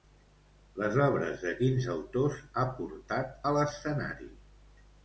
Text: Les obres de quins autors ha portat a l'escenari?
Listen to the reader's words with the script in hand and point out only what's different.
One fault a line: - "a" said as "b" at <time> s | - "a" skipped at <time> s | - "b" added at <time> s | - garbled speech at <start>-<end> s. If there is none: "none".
none